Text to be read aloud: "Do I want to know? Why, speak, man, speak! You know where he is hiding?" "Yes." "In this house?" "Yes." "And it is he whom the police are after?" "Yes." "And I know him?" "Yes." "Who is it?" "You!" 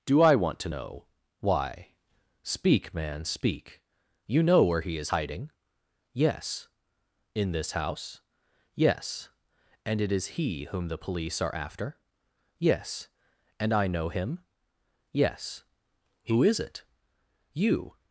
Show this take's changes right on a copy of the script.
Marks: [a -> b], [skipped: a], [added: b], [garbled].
"Do I want to know? Why, speak, man, speak! You know where he is hiding?" "Yes." "In this house?" "Yes." "And it is he whom the police are after?" "Yes." "And I know him?" "Yes." "Who is it?" "You!"